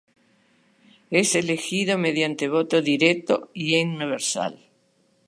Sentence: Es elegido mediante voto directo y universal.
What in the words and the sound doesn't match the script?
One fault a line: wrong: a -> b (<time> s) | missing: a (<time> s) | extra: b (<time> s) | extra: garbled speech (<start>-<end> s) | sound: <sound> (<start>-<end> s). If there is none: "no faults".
no faults